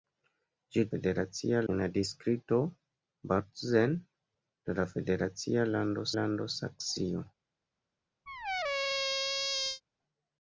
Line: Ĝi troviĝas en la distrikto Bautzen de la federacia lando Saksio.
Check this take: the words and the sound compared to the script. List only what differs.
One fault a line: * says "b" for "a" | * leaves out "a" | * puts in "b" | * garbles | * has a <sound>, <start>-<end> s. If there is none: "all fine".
* says "federacia" for "troviĝas"
* puts in "lando"
* has a squeak, 8.3-9.8 s